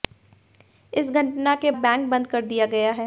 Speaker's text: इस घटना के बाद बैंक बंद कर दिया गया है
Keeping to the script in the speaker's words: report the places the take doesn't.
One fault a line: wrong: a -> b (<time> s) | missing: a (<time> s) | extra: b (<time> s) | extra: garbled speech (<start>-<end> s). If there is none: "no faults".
missing: बाद (1.7 s)